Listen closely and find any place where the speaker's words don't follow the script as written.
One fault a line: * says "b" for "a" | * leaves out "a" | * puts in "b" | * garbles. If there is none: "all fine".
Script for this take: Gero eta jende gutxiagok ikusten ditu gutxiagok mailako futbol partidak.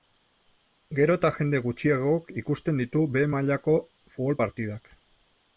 * says "behe" for "gutxiagok"